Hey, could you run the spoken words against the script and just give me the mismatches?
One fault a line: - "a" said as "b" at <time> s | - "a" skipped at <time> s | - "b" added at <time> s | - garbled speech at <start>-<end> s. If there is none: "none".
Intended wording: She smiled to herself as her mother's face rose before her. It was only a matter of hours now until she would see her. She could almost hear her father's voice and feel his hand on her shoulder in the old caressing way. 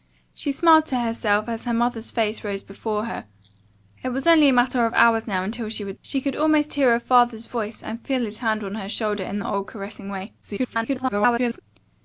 - "see her" skipped at 6.0 s
- garbled speech at 10.4-11.6 s